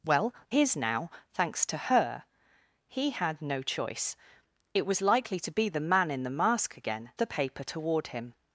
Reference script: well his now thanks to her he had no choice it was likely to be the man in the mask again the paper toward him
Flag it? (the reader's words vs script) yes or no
no